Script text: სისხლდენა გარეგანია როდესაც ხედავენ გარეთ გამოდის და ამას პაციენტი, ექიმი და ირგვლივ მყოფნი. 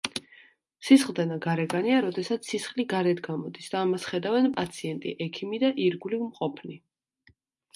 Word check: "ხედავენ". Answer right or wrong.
wrong